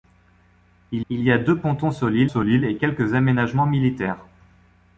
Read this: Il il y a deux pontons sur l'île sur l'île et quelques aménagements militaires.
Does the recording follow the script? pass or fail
pass